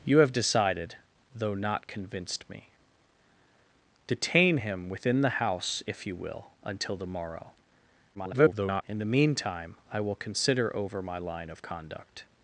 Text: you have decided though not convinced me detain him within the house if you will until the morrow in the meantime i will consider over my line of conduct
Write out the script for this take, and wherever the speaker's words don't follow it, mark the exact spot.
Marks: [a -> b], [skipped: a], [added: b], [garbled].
you have decided though not convinced me detain him within the house if you will until the morrow [garbled] in the meantime i will consider over my line of conduct